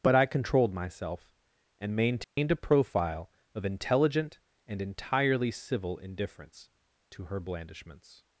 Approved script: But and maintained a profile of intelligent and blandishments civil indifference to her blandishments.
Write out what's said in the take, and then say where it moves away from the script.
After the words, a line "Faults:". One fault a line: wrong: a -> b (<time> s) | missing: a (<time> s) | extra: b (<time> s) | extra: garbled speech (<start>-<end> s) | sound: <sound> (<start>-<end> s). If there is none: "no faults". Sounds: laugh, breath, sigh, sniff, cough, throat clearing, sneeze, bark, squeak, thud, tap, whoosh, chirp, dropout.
But I controlled myself and maintained a profile of intelligent and entirely civil indifference to her blandishments.
Faults:
extra: I controlled myself (0.1 s)
sound: dropout (2.2-2.4 s)
wrong: blandishments -> entirely (4.8 s)